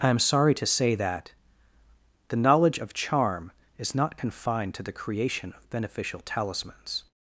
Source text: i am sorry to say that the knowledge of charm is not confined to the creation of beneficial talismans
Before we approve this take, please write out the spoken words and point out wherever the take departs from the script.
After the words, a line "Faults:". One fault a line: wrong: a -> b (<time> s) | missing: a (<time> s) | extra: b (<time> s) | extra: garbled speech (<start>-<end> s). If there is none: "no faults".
i am sorry to say that the knowledge of charm is not confined to the creation of beneficial talismans
Faults:
no faults